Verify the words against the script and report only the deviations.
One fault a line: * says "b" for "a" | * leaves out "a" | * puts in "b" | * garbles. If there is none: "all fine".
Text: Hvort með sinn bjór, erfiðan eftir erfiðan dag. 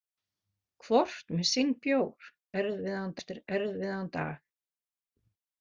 all fine